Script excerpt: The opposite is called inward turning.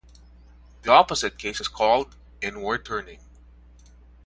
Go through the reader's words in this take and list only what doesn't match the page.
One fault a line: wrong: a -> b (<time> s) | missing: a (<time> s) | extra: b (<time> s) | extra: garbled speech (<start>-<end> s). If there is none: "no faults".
extra: case (1.4 s)